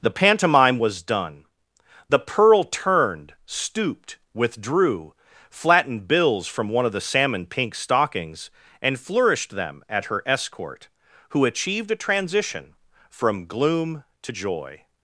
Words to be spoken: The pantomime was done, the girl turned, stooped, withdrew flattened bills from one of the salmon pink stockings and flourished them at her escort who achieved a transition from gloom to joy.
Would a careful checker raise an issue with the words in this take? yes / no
yes